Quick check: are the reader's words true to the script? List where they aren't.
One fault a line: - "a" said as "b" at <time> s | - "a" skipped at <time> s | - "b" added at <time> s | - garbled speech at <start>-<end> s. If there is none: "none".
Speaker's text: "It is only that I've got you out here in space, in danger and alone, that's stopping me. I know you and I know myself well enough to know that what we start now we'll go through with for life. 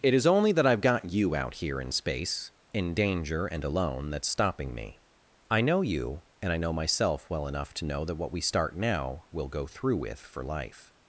none